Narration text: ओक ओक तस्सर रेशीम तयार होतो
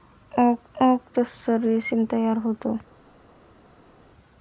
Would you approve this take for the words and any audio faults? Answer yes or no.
yes